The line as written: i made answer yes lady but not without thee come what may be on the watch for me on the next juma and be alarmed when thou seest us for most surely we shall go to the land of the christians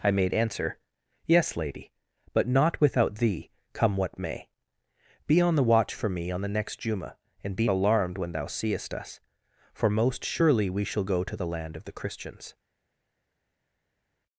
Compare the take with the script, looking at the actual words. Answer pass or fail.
pass